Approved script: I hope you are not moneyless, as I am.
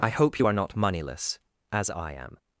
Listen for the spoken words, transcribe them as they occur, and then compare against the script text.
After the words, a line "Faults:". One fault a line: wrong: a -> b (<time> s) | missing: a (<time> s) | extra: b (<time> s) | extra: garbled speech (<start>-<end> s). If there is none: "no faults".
I hope you are not moneyless, as I am.
Faults:
no faults